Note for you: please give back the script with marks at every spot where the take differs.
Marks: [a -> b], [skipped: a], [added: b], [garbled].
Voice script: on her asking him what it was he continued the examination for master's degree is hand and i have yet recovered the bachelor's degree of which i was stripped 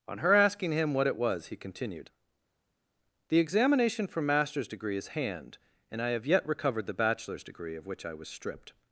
on her asking him what it was he continued the examination for master's degree is hand and i have yet recovered the bachelor's degree of which i was stripped